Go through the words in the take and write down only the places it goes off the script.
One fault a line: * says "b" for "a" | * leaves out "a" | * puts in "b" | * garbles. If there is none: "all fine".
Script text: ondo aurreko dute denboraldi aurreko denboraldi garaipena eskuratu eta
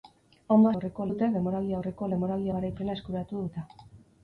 all fine